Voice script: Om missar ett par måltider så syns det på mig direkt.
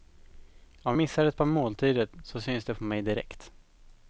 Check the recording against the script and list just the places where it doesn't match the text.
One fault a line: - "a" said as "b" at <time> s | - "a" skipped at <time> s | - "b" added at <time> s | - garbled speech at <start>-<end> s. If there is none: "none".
none